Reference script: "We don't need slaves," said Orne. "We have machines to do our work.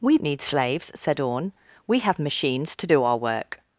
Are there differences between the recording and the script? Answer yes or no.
yes